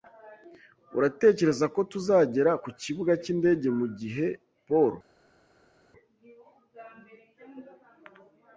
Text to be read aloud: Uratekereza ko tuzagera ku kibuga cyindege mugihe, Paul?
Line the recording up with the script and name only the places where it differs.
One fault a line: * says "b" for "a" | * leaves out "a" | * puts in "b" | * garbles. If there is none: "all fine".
all fine